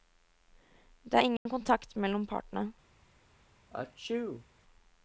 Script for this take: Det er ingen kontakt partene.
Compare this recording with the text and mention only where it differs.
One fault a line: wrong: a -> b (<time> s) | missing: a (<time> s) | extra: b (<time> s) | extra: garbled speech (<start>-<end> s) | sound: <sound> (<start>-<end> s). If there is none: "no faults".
sound: dropout (1.4-1.5 s)
extra: mellom (2.0 s)
sound: sneeze (3.7-4.5 s)